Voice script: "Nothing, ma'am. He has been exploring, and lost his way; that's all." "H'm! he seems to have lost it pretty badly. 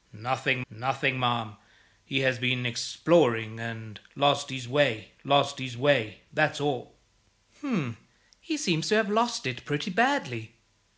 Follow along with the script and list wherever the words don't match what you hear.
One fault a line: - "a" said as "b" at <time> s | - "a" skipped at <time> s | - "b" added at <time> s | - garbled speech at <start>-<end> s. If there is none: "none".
- "nothing" added at 0.7 s
- "lost his way" added at 5.2 s